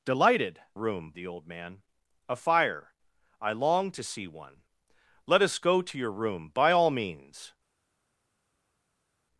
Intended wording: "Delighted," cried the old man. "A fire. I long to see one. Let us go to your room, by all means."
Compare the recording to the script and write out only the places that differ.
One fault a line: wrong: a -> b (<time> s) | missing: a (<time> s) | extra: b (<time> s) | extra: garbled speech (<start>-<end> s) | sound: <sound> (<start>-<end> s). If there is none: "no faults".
wrong: cried -> room (0.7 s)